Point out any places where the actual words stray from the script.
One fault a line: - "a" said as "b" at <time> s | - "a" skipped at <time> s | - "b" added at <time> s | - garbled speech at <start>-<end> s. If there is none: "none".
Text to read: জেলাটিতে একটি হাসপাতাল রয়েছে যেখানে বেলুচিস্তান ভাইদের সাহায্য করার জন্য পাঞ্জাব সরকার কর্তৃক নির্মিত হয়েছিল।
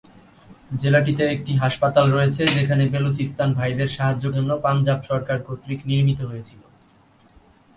- "করার" skipped at 4.2 s